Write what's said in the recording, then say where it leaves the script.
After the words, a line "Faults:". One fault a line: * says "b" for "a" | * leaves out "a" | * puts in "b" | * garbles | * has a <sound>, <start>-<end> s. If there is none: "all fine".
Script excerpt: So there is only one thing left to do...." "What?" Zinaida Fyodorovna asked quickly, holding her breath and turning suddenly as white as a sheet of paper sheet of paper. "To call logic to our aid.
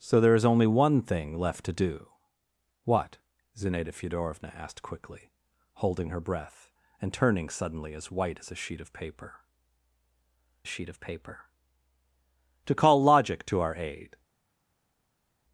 So there is only one thing left to do...." "What?" Zinaida Fyodorovna asked quickly, holding her breath and turning suddenly as white as a sheet of paper sheet of paper. "To call logic to our aid.
Faults:
all fine